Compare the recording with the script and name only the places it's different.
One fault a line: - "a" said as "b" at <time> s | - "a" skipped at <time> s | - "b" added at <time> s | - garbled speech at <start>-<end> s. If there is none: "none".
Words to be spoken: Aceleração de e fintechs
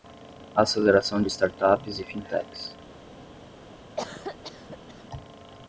- "startups" added at 1.3 s